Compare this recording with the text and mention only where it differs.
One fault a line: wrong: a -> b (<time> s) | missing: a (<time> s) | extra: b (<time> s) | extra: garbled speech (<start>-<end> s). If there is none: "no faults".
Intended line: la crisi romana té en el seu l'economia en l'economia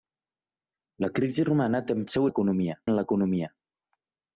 no faults